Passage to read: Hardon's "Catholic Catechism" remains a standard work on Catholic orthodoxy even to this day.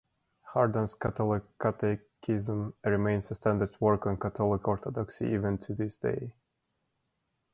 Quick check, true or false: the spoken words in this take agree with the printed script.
true